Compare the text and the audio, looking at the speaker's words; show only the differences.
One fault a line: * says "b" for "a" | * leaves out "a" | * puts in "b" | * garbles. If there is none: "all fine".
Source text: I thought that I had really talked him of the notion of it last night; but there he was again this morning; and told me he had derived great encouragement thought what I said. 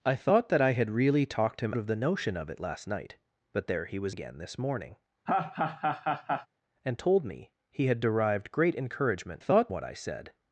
all fine